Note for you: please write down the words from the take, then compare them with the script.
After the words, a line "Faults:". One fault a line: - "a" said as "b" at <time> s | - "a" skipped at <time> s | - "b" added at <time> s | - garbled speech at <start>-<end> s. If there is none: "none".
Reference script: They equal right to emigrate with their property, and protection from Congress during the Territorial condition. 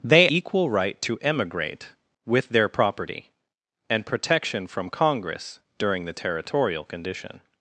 They equal right to emigrate with their property, and protection from Congress during the Territorial condition.
Faults:
none